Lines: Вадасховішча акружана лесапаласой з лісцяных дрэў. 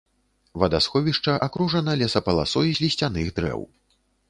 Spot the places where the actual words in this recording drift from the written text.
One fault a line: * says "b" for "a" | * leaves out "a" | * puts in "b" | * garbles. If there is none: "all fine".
all fine